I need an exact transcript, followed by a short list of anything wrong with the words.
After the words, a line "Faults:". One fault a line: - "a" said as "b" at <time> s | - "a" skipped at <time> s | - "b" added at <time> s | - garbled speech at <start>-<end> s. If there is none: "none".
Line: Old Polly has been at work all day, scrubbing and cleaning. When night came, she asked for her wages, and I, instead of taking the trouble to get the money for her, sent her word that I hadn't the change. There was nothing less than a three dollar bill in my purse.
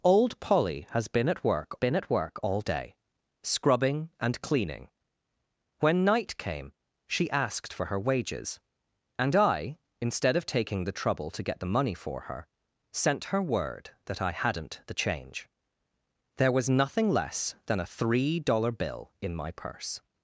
Old Polly has been at work been at work all day, scrubbing and cleaning. When night came, she asked for her wages, and I, instead of taking the trouble to get the money for her, sent her word that I hadn't the change. There was nothing less than a three dollar bill in my purse.
Faults:
- "been at work" added at 1.7 s